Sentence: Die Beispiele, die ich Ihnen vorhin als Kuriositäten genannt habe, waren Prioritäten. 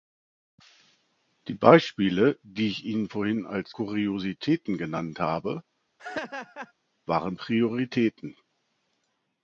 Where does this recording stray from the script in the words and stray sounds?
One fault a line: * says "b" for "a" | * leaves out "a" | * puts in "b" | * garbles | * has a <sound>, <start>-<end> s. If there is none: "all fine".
* has a laugh, 6.0-6.7 s